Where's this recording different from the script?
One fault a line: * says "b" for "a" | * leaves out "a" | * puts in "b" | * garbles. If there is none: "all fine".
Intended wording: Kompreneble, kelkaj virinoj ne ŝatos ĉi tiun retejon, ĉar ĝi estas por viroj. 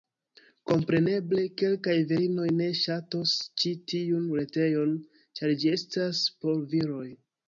all fine